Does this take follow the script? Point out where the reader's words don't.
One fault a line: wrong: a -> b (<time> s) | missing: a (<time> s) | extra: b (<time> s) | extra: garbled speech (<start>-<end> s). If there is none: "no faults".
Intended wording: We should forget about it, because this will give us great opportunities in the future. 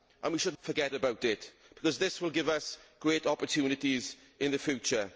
no faults